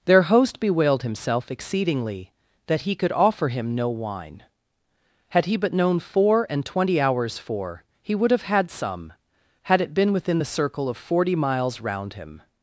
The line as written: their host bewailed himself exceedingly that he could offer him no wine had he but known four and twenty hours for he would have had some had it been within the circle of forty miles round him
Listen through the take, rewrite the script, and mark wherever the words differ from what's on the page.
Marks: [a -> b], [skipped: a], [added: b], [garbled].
their host bewailed himself exceedingly that he could offer him no wine had he but known four and twenty hours for he would have had some had it been within the circle of forty miles round him